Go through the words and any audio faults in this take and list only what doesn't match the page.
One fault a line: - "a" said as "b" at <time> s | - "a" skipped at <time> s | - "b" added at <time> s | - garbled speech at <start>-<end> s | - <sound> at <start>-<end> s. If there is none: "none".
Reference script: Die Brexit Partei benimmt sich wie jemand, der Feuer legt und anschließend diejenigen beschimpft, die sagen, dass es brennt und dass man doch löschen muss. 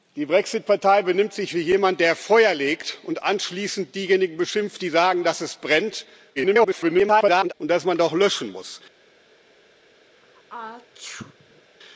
- garbled speech at 6.4-7.5 s
- sneeze at 10.1-11.7 s